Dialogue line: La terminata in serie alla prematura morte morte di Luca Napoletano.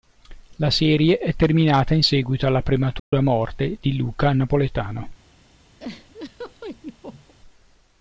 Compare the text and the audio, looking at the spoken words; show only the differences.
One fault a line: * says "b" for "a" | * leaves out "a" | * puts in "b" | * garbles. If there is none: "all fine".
* puts in "serie è"
* says "seguito" for "serie"
* leaves out "morte"